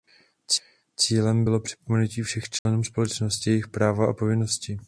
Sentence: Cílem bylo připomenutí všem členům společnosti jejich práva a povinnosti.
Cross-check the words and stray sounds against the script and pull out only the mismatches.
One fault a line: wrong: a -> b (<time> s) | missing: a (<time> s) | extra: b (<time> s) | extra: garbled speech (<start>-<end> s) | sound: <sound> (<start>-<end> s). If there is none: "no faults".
sound: dropout (2.6-2.7 s)